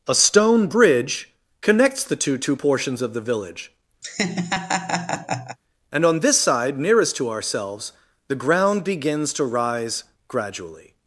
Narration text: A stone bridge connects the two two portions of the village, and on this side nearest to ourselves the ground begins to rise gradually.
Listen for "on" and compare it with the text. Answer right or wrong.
right